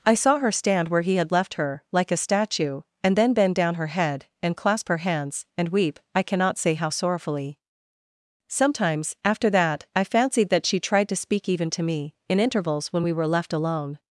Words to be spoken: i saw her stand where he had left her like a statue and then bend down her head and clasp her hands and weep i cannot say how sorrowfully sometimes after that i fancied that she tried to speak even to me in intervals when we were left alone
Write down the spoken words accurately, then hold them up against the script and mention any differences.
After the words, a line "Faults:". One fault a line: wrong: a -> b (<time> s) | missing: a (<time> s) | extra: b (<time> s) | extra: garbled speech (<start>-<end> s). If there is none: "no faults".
i saw her stand where he had left her like a statue and then bend down her head and clasp her hands and weep i cannot say how sorrowfully sometimes after that i fancied that she tried to speak even to me in intervals when we were left alone
Faults:
no faults